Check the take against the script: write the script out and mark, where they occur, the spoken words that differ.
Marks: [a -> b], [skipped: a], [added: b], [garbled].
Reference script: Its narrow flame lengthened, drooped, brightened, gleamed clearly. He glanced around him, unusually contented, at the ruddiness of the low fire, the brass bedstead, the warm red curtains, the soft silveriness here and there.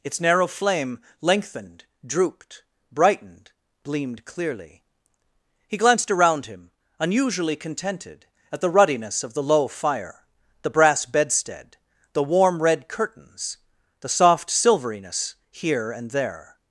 Its narrow flame lengthened, drooped, brightened, gleamed clearly. He glanced around him, unusually contented, at the ruddiness of the low fire, the brass bedstead, the warm red curtains, the soft silveriness here and there.